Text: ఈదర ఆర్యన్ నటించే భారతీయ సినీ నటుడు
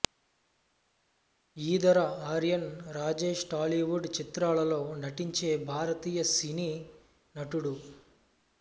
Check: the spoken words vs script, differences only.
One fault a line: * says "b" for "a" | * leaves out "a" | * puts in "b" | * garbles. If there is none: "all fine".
* puts in "రాజేష్ టాలీవుడ్ చిత్రాలలో"